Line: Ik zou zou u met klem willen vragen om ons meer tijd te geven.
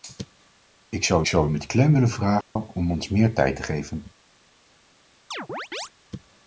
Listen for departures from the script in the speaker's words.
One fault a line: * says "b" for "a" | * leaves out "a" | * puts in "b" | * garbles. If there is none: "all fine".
all fine